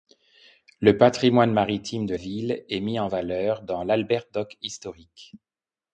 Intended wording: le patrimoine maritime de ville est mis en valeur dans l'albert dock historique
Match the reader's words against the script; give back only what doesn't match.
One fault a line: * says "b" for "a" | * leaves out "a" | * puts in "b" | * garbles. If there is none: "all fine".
all fine